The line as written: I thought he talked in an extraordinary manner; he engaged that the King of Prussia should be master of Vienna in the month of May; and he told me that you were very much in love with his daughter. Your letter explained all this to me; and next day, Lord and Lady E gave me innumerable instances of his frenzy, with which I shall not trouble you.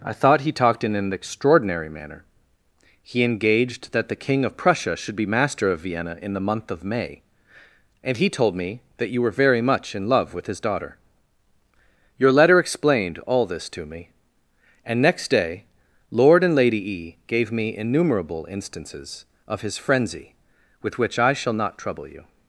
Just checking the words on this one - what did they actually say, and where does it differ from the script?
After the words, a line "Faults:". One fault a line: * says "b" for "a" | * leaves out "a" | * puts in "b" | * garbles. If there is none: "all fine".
I thought he talked in an extraordinary manner; he engaged that the King of Prussia should be master of Vienna in the month of May; and he told me that you were very much in love with his daughter. Your letter explained all this to me; and next day, Lord and Lady E gave me innumerable instances of his frenzy, with which I shall not trouble you.
Faults:
all fine